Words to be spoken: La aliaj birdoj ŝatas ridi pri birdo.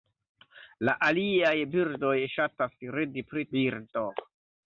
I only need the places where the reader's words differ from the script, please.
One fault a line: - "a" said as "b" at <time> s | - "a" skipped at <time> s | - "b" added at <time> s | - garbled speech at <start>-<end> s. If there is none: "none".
none